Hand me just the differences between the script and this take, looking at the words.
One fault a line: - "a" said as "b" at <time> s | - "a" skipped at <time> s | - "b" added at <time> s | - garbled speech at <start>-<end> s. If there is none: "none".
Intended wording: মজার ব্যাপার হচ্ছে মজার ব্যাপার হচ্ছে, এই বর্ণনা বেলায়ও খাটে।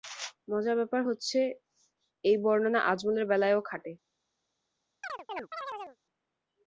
- "মজার ব্যাপার হচ্ছে" skipped at 1.4 s
- "আজমলের" added at 2.9 s